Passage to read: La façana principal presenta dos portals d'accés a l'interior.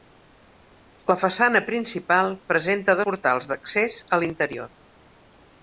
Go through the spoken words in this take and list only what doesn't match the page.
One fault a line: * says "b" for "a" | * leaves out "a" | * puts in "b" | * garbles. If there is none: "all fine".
* leaves out "dos"